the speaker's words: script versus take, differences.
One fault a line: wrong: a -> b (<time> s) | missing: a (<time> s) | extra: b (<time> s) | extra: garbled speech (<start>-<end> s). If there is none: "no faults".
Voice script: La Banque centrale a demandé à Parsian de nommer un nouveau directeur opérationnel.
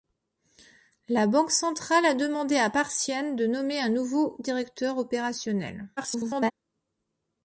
extra: garbled speech (6.0-6.5 s)